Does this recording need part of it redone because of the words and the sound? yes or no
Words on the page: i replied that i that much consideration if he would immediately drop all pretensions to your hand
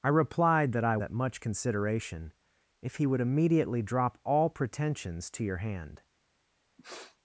yes